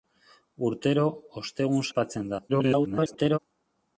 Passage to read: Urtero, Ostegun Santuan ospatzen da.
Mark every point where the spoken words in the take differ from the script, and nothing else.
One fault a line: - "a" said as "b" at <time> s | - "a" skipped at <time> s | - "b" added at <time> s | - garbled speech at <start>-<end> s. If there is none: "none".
- "Santuan" skipped at 1.9 s
- garbled speech at 2.5-3.4 s